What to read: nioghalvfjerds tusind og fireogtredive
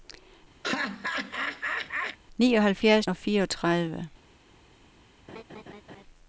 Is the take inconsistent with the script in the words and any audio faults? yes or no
yes